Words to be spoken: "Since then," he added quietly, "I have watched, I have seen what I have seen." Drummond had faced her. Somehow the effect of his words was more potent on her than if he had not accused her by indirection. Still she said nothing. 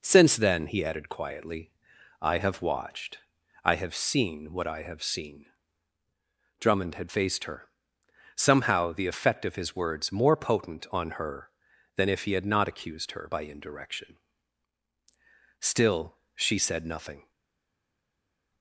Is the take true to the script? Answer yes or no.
no